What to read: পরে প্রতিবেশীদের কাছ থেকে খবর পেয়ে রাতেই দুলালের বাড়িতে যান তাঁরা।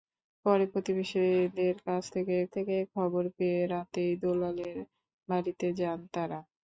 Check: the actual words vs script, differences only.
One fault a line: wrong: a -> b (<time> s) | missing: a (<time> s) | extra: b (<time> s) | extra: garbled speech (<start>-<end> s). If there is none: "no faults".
extra: থেকে (2.5 s)